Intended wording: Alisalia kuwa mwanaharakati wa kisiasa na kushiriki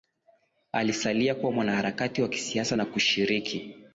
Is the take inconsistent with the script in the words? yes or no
no